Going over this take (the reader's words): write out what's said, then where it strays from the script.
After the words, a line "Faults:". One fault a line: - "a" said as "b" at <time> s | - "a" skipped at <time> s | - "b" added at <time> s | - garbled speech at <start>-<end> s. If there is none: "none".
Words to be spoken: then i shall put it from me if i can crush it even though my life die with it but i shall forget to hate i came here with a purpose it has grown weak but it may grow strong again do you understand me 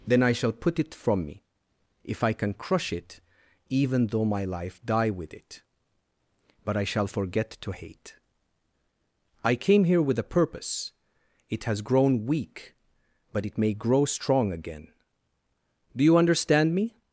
then i shall put it from me if i can crush it even though my life die with it but i shall forget to hate i came here with a purpose it has grown weak but it may grow strong again do you understand me
Faults:
none